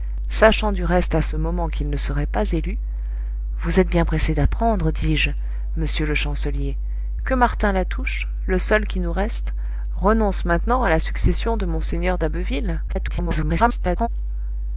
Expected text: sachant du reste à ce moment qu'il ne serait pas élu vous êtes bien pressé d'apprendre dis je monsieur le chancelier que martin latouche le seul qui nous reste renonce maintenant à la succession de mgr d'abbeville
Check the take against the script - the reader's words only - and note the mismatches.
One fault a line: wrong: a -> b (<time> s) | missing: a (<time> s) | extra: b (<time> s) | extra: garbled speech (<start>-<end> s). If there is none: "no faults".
extra: garbled speech (12.9-14.1 s)